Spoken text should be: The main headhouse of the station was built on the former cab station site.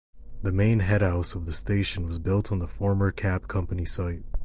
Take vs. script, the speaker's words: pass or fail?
fail